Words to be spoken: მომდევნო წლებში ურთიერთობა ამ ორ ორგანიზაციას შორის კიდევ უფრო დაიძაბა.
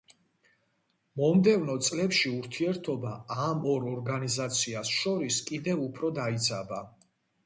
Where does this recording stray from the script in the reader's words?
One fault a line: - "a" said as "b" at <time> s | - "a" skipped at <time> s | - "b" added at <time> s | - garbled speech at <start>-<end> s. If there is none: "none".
none